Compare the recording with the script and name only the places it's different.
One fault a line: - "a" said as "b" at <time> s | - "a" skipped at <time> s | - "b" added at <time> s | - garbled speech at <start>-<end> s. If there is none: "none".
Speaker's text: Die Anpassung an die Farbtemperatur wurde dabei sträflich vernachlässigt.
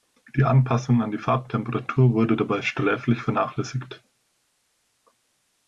none